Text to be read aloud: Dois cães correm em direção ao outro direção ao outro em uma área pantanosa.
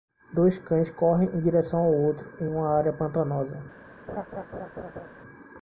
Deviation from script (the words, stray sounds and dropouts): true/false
true